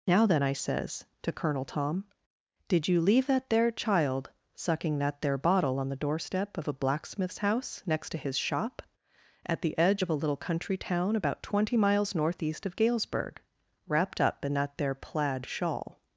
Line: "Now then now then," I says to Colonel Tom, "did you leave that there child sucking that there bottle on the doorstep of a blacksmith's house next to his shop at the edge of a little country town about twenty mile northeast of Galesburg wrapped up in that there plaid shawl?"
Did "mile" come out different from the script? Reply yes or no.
yes